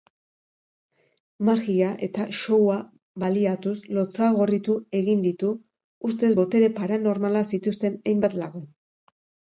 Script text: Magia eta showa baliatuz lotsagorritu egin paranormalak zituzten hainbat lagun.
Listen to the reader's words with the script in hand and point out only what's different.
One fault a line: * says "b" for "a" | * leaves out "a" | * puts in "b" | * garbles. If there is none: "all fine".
* puts in "ditu ustez botere"